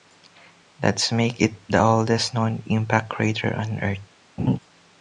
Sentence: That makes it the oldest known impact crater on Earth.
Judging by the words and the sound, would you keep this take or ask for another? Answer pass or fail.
fail